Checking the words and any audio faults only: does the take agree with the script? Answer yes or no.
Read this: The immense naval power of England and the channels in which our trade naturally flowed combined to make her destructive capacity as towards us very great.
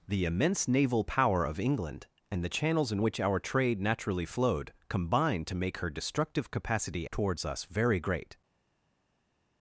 no